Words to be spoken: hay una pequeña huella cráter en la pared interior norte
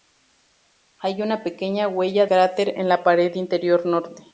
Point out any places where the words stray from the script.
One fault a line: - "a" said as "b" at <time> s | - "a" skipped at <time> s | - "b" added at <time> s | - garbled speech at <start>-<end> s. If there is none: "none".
none